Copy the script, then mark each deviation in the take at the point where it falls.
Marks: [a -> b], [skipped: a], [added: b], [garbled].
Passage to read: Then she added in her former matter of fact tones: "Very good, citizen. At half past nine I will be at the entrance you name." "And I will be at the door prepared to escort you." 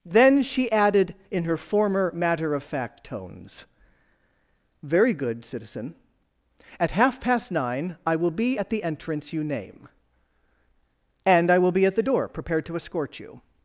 Then she added in her former matter of fact tones: "Very good, citizen. At half past nine I will be at the entrance you name." "And I will be at the door prepared to escort you."